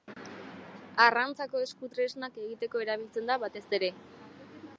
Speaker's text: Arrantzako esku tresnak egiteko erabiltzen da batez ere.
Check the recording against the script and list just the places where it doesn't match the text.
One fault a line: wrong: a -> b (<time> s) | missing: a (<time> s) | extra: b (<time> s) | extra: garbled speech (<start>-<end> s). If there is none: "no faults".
no faults